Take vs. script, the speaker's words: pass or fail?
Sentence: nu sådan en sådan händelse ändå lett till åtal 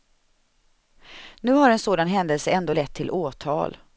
fail